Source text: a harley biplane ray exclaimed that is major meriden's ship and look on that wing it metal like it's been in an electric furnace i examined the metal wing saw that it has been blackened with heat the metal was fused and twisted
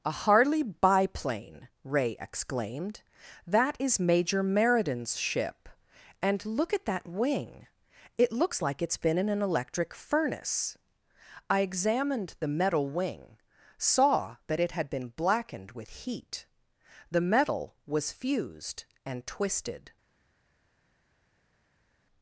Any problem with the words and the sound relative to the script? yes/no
yes